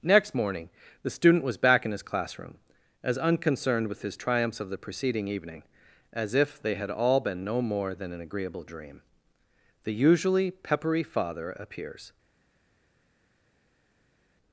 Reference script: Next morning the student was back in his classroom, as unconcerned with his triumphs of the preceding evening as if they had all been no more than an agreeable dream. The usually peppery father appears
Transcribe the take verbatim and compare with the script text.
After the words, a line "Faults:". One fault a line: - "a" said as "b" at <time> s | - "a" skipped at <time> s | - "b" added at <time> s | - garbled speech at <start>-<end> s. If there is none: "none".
Next morning the student was back in his classroom, as unconcerned with his triumphs of the preceding evening as if they had all been no more than an agreeable dream. The usually peppery father appears
Faults:
none